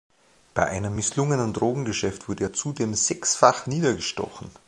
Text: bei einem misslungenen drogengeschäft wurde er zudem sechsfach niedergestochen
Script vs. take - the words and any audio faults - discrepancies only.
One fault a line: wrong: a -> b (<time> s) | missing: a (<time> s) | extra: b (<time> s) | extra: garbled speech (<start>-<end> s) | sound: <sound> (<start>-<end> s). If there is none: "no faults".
no faults